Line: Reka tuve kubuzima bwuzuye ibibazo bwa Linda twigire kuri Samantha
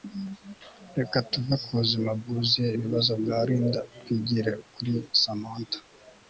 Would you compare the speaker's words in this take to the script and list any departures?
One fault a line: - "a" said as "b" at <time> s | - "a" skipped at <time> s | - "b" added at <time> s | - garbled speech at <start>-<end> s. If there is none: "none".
none